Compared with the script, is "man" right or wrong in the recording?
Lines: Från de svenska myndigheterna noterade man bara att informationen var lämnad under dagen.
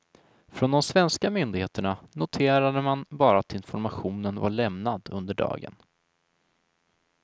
right